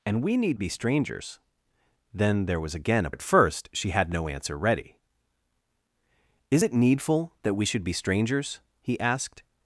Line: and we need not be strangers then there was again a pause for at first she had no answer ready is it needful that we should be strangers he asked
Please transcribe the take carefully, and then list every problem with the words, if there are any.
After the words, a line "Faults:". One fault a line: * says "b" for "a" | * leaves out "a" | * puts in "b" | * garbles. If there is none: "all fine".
and we need be strangers then there was again a at first she had no answer ready is it needful that we should be strangers he asked
Faults:
* leaves out "not"
* leaves out "pause for"